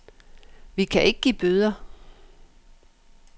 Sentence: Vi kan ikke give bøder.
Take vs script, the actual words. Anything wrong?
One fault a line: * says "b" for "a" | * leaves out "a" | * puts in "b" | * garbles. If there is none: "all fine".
all fine